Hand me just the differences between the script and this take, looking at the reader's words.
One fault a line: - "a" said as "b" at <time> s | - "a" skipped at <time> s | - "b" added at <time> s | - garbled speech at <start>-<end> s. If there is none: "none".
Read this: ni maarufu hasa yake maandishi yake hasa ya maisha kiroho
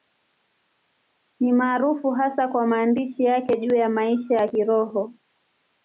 - "yake" said as "kwa" at 2.5 s
- "hasa" said as "juu" at 3.6 s
- "ya" added at 4.3 s